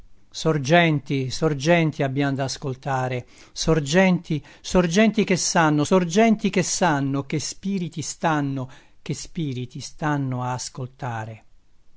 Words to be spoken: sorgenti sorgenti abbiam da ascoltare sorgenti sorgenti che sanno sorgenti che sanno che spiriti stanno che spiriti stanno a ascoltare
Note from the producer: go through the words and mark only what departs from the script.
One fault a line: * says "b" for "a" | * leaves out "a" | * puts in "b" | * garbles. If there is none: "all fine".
all fine